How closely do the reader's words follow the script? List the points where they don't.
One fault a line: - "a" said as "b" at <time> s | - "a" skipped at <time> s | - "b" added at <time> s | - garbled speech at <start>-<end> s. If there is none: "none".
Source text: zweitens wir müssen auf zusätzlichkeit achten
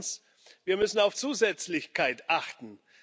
none